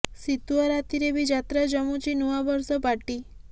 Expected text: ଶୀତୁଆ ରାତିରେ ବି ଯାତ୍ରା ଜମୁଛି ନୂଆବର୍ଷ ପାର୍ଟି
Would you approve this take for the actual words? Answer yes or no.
yes